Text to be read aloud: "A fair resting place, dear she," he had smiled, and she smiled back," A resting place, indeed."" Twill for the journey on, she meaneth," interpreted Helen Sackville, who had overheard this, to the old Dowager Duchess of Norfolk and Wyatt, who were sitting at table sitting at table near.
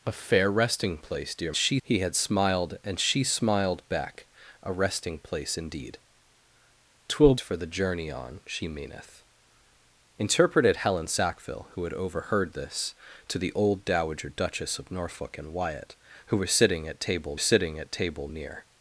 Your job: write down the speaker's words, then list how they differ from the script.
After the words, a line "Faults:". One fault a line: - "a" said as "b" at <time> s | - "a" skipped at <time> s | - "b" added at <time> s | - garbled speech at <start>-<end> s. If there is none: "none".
"A fair resting place, dear she," he had smiled, and she smiled back," A resting place, indeed."" Twill for the journey on, she meaneth," interpreted Helen Sackville, who had overheard this, to the old Dowager Duchess of Norfolk and Wyatt, who were sitting at table sitting at table near.
Faults:
none